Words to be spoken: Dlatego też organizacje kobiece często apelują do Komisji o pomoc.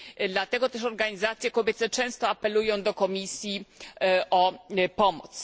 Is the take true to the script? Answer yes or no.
yes